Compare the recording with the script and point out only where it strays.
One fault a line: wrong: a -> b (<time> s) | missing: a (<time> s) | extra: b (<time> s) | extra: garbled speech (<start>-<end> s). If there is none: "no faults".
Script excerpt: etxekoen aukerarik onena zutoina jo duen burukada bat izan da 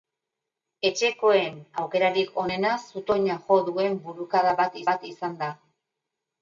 extra: bat (4.9 s)